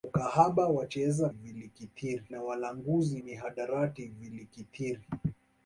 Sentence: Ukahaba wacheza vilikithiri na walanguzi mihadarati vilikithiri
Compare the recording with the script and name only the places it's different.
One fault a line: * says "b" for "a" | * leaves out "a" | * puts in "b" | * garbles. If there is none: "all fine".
all fine